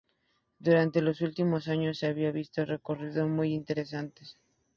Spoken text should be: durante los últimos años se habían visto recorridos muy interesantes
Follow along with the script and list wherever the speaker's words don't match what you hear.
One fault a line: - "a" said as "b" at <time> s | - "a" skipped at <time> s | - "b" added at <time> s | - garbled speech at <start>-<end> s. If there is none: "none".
none